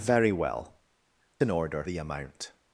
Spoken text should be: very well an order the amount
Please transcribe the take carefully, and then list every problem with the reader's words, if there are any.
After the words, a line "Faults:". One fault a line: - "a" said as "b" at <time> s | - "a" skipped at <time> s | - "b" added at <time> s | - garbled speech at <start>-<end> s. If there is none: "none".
very well an order the amount
Faults:
none